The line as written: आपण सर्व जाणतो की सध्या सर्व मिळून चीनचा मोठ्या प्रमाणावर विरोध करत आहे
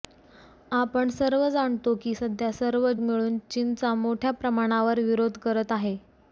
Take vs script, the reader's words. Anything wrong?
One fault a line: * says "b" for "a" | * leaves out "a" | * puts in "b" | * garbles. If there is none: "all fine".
all fine